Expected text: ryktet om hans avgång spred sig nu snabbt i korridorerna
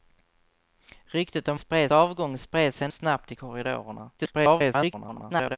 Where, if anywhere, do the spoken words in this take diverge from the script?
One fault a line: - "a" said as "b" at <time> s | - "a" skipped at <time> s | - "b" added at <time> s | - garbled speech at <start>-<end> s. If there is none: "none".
- "hans" said as "spred" at 1.6 s
- "nu" skipped at 2.9 s
- garbled speech at 4.2-5.6 s